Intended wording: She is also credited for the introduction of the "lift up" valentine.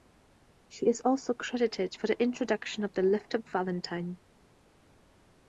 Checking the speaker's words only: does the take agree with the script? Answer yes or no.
yes